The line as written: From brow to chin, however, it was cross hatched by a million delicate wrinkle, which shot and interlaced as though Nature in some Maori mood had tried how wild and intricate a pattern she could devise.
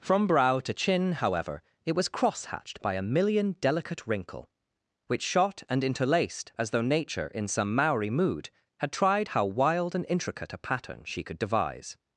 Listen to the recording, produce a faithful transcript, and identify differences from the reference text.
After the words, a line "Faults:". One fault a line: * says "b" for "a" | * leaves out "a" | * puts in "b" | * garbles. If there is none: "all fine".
From brow to chin, however, it was cross hatched by a million delicate wrinkle, which shot and interlaced as though Nature in some Maori mood had tried how wild and intricate a pattern she could devise.
Faults:
all fine